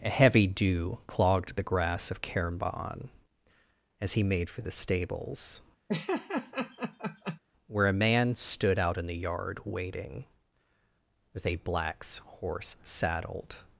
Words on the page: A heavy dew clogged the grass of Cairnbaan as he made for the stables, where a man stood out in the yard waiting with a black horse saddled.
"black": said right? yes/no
no